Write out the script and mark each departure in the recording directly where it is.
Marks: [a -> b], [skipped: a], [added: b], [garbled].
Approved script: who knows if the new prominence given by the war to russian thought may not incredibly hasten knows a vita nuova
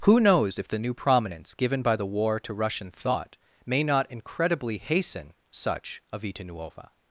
who knows if the new prominence given by the war to russian thought may not incredibly hasten [knows -> such] a vita nuova